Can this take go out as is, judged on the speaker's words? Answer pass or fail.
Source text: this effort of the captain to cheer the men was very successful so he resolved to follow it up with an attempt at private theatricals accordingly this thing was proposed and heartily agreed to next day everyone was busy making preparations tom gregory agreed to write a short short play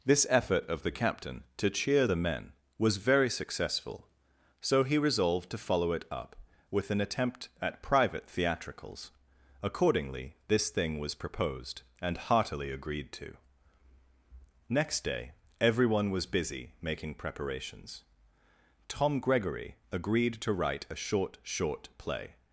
pass